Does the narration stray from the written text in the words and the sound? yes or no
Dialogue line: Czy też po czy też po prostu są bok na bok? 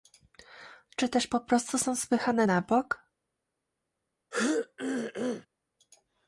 yes